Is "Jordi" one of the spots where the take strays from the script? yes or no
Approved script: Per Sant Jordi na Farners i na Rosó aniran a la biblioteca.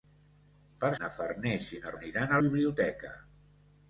yes